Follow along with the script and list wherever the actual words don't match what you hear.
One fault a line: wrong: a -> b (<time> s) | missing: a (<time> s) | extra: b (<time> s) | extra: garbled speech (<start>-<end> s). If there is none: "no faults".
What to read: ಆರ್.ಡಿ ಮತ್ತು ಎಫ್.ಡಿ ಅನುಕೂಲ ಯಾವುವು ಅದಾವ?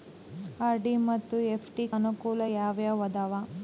no faults